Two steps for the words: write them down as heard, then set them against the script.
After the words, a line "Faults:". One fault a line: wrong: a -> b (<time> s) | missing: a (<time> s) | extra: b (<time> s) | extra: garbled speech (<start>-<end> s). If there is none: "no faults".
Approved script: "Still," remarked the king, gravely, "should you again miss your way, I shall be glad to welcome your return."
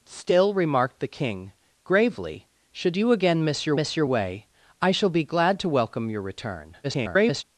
"Still," remarked the king, gravely, "should you again miss your miss your way, I shall be glad to welcome your return." [garbled]
Faults:
extra: miss your (3.8 s)
extra: garbled speech (6.8-7.4 s)